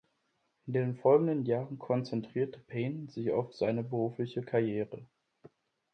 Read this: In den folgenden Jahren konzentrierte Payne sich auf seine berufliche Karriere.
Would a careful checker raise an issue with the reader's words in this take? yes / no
no